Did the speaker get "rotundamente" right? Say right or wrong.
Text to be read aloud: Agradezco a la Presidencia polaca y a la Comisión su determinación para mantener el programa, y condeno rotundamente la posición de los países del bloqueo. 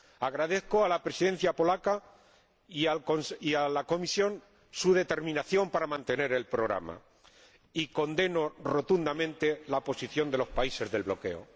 right